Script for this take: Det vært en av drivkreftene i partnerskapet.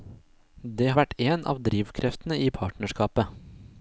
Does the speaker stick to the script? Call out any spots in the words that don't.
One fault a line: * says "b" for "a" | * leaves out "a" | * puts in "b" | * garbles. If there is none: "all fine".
all fine